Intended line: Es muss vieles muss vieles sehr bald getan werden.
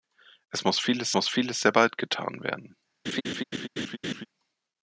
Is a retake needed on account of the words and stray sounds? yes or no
yes